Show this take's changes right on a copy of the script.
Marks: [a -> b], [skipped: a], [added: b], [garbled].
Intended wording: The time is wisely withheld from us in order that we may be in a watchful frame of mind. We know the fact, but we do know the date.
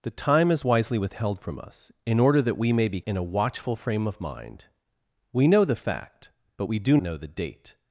The time is wisely withheld from us in order that we may be in a watchful frame of mind. We know the fact, but we do know the date.